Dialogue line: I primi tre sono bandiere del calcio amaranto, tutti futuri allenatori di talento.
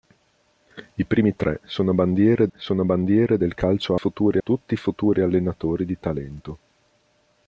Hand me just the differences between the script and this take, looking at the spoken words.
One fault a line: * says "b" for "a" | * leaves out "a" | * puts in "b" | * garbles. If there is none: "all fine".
* puts in "sono bandiere"
* says "futuri" for "amaranto"